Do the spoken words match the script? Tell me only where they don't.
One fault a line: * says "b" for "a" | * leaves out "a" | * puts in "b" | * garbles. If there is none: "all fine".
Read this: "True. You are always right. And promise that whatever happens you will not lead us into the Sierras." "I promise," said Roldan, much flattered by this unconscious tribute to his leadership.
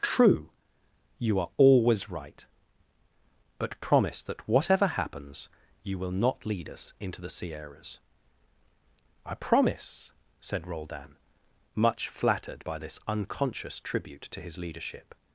* says "But" for "And"